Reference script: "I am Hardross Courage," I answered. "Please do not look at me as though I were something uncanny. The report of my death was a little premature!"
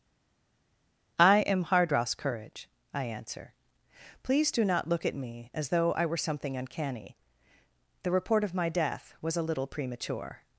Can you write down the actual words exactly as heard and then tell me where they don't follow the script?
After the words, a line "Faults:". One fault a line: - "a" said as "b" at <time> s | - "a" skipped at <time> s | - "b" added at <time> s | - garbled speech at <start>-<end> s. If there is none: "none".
"I am Hardross Courage," I answer. "Please do not look at me as though I were something uncanny. The report of my death was a little premature!"
Faults:
- "answered" said as "answer" at 3.0 s